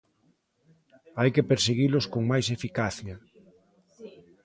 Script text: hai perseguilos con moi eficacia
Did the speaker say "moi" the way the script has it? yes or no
no